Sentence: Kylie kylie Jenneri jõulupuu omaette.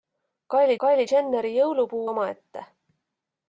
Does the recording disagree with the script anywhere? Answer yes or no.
no